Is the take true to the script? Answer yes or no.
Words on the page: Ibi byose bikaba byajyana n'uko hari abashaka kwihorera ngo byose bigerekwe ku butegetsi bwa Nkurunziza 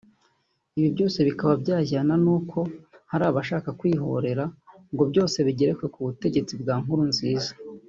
yes